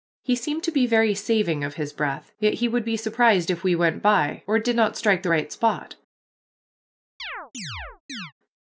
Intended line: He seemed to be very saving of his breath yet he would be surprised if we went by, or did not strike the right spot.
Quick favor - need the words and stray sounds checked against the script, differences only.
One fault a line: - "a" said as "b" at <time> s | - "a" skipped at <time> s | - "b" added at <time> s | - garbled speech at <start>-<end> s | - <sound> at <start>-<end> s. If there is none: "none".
- chirp at 7.2-8.3 s